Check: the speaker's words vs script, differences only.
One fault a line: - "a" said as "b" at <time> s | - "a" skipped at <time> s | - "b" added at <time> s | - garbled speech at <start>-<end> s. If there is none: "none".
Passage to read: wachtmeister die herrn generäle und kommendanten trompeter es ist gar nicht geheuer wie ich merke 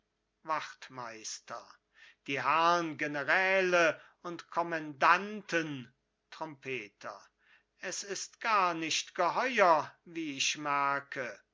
none